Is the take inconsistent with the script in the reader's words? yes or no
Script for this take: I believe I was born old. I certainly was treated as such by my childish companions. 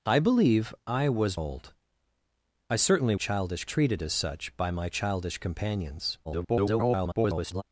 yes